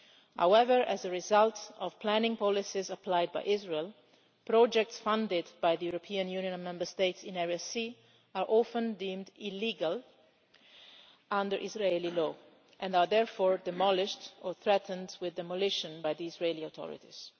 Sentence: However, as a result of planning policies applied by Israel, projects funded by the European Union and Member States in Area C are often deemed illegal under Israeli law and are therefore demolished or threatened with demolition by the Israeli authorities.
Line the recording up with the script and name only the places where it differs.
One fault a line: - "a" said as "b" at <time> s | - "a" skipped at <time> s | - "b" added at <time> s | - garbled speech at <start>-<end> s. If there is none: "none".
none